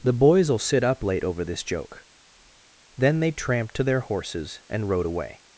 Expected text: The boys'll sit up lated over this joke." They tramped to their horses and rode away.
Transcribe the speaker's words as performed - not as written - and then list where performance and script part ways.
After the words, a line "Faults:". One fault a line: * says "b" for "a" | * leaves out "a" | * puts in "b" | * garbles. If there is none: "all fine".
The boys'll sit up late over this joke." Then they tramped to their horses and rode away.
Faults:
* says "late" for "lated"
* puts in "Then"